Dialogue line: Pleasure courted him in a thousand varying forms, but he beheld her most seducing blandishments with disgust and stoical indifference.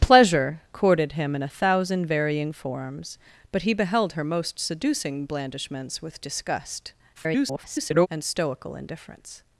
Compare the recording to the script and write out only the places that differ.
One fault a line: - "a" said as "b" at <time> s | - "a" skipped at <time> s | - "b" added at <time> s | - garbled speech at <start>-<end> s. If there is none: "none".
- garbled speech at 7.1-8.1 s